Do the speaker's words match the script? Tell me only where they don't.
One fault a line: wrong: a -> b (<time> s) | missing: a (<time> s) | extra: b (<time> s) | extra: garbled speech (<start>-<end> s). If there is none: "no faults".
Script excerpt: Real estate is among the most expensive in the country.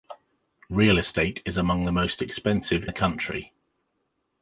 missing: in (2.9 s)